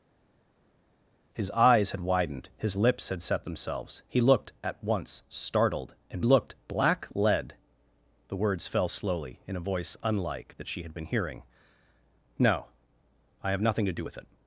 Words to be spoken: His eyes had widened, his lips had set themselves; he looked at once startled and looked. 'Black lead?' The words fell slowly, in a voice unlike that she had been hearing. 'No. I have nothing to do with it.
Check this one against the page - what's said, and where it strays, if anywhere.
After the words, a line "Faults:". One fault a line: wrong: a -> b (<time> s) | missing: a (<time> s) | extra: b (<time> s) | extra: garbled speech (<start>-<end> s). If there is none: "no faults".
His eyes had widened, his lips had set themselves; he looked at once startled and looked. 'Black lead?' The words fell slowly, in a voice unlike that she had been hearing. 'No. I have nothing to do with it.
Faults:
no faults